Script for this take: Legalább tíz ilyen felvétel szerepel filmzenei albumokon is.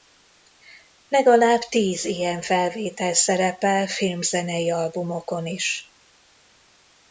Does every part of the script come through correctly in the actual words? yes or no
yes